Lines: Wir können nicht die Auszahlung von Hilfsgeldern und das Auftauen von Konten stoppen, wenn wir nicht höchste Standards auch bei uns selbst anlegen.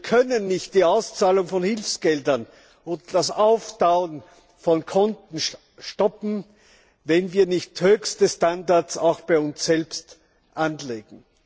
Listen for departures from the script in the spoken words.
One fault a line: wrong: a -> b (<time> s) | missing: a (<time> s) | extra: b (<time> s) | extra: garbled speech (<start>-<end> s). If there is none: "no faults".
no faults